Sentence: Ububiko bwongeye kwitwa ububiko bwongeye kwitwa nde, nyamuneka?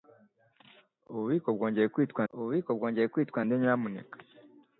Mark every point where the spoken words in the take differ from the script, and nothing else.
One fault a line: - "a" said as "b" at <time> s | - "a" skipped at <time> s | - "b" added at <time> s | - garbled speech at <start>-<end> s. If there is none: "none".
none